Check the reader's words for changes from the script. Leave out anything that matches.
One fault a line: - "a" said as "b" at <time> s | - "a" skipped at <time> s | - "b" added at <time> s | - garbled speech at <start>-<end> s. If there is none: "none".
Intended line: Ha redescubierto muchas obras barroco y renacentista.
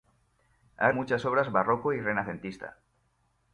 - "redescubierto" skipped at 0.9 s